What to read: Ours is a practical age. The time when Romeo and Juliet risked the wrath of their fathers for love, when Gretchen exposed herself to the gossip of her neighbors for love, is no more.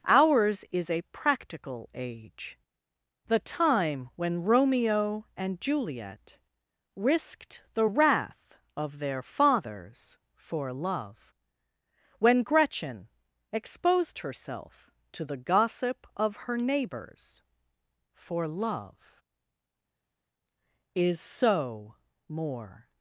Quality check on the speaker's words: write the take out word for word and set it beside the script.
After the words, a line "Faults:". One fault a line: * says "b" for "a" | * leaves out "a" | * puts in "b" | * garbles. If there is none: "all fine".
Ours is a practical age. The time when Romeo and Juliet risked the wrath of their fathers for love, when Gretchen exposed herself to the gossip of her neighbors for love, is so more.
Faults:
* says "so" for "no"